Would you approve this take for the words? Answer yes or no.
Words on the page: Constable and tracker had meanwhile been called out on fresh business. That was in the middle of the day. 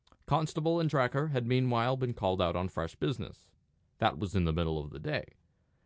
yes